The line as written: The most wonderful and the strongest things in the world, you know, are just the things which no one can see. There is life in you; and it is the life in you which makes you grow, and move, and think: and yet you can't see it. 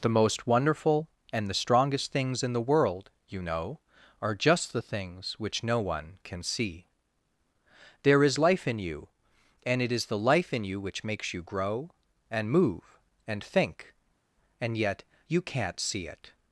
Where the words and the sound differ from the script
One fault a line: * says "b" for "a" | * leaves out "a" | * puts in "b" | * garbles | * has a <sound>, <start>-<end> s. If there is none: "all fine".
all fine